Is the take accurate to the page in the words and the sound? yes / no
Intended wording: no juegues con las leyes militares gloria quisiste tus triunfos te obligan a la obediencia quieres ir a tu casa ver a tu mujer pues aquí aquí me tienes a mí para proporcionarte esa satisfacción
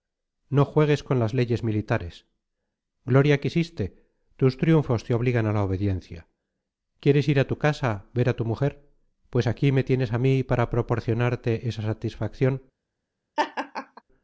no